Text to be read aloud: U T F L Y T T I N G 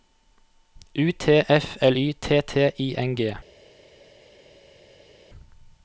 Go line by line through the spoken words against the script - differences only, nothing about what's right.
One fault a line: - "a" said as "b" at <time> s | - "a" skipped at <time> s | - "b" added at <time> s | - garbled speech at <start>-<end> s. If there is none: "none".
none